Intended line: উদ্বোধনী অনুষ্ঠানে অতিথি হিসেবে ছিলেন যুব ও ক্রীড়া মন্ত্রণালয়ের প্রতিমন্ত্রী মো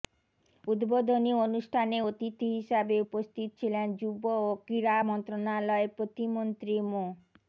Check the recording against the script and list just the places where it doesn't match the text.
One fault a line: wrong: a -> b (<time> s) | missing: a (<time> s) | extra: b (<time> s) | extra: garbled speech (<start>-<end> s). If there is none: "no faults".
extra: উপস্থিত (3.0 s)